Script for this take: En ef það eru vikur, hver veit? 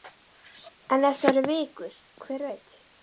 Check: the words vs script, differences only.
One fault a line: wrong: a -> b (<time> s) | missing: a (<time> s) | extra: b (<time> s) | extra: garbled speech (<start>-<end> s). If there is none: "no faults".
no faults